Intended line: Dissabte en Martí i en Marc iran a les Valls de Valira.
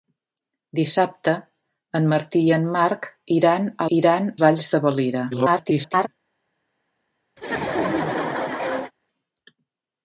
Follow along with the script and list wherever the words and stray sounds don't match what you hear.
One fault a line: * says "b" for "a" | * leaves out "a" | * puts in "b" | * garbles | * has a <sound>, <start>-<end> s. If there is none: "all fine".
* says "iran" for "les"
* garbles
* has a laugh, 7.4-8.9 s